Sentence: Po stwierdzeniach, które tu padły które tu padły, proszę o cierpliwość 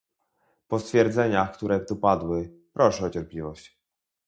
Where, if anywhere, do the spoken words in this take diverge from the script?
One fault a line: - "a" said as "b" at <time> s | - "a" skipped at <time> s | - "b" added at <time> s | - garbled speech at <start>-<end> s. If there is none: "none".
- "które tu padły" skipped at 2.5 s